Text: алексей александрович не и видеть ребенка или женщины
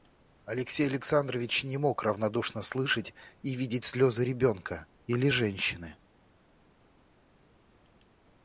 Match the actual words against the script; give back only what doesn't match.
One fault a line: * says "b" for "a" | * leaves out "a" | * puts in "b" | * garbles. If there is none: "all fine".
* puts in "мог равнодушно слышать"
* puts in "слезы"